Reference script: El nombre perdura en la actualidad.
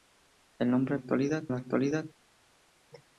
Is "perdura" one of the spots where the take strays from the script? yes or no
yes